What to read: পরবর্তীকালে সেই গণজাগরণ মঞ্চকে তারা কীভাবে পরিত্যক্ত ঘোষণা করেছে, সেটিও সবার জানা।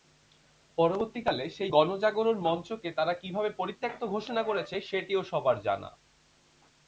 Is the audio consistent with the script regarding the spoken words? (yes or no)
yes